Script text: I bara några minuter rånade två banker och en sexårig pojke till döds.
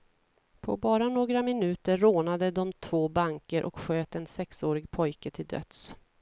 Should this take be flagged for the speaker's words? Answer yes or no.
yes